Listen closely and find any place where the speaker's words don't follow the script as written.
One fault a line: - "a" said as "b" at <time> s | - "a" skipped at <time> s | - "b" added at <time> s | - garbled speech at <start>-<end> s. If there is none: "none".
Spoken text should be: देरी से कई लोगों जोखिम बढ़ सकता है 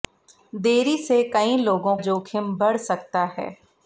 none